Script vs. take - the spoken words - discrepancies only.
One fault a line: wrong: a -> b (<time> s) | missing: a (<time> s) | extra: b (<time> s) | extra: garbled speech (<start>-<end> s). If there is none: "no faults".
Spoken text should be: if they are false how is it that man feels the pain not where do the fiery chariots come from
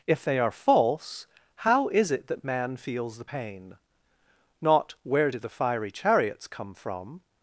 no faults